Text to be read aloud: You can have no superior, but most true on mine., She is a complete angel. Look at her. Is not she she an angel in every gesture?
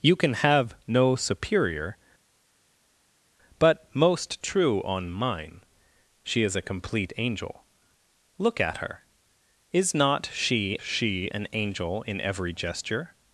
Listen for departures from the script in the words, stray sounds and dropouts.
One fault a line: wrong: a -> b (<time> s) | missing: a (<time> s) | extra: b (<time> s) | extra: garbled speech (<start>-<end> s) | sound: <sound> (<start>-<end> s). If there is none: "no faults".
no faults